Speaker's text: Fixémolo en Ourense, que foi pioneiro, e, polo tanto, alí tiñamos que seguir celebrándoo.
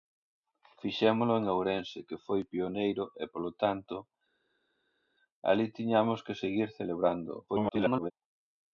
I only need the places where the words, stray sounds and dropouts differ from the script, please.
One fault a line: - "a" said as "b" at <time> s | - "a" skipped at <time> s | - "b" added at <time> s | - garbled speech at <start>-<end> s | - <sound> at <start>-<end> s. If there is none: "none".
- garbled speech at 7.5-8.1 s